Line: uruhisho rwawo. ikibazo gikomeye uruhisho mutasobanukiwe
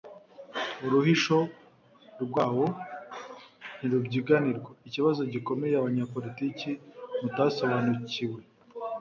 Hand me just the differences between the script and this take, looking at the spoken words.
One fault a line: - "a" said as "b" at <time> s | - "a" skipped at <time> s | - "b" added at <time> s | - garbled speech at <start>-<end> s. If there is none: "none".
- "ntirubyiganirwa" added at 3.8 s
- "uruhisho" said as "abanyapolitiki" at 5.8 s